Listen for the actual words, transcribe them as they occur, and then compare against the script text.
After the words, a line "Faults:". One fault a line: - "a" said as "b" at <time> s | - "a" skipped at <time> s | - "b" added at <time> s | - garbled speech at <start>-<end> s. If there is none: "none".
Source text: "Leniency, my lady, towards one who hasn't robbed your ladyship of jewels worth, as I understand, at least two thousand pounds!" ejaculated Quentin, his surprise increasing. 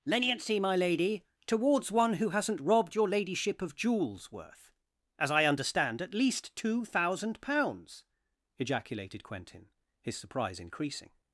"Leniency, my lady, towards one who hasn't robbed your ladyship of jewels worth, as I understand, at least two thousand pounds!" ejaculated Quentin, his surprise increasing.
Faults:
none